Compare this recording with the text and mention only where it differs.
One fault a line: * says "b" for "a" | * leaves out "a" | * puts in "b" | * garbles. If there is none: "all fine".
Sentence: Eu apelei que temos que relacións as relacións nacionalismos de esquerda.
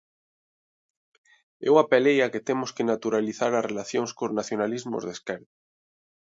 * puts in "a"
* says "naturalizar" for "relacións"
* puts in "cos"